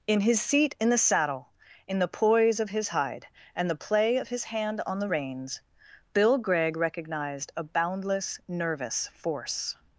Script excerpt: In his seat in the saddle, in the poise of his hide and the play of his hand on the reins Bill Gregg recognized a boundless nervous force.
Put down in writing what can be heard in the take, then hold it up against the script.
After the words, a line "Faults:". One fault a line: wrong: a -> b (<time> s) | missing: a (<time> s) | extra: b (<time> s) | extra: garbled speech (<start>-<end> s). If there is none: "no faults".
In his seat in the saddle, in the poise of his hide and the play of his hand on the reins Bill Gregg recognized a boundless nervous force.
Faults:
no faults